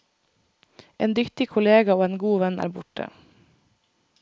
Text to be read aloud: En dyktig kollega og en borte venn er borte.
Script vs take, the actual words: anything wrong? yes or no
yes